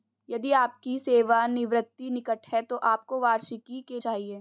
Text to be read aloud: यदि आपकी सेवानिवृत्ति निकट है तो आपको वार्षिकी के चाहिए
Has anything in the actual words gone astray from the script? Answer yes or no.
no